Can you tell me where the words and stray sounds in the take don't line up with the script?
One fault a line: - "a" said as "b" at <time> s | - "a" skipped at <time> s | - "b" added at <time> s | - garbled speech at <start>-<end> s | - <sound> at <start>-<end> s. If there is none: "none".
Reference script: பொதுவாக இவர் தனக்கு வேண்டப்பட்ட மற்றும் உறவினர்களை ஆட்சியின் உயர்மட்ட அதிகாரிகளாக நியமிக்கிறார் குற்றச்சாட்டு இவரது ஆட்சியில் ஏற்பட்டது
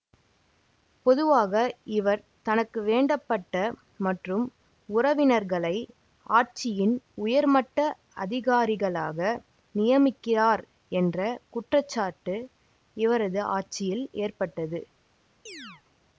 - "என்ற" added at 10.9 s
- chirp at 15.5-15.8 s